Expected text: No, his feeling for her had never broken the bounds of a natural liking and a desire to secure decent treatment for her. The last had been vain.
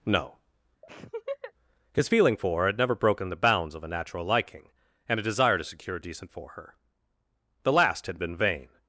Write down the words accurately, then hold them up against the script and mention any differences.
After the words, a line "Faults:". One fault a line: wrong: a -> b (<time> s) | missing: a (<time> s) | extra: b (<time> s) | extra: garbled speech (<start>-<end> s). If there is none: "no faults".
No, his feeling for her had never broken the bounds of a natural liking and a desire to secure decent for her. The last had been vain.
Faults:
missing: treatment (6.3 s)